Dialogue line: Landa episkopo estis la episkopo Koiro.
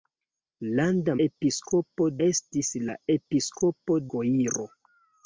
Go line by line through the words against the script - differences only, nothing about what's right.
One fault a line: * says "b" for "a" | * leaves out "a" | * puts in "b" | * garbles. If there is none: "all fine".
all fine